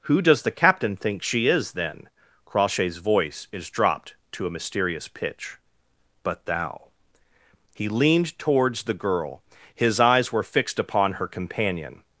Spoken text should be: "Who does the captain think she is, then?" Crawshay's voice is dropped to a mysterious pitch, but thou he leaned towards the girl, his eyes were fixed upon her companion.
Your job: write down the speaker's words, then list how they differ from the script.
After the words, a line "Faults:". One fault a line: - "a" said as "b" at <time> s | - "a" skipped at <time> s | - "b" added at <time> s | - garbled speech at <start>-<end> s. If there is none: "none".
"Who does the captain think she is, then?" Crawshay's voice is dropped to a mysterious pitch, but thou he leaned towards the girl, his eyes were fixed upon her companion.
Faults:
none